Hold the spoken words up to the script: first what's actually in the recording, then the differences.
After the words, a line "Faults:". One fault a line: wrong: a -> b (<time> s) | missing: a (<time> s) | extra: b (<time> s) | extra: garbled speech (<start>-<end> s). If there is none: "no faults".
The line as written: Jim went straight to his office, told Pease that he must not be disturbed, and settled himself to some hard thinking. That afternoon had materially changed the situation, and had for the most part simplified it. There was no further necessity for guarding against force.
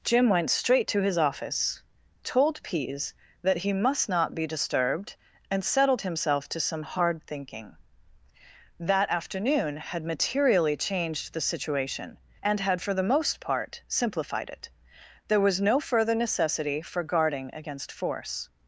Jim went straight to his office, told Pease that he must not be disturbed, and settled himself to some hard thinking. That afternoon had materially changed the situation, and had for the most part simplified it. There was no further necessity for guarding against force.
Faults:
no faults